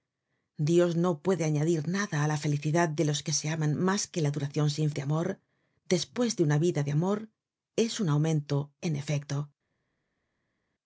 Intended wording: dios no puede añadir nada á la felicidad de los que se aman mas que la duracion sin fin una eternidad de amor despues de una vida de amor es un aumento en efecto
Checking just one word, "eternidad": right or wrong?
wrong